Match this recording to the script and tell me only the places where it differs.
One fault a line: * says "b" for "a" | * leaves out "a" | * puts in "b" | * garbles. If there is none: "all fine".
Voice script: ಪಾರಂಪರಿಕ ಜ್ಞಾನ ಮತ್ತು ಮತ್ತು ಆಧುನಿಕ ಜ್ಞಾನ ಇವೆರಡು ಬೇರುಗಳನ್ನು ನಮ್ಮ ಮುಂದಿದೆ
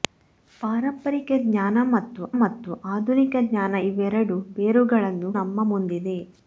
all fine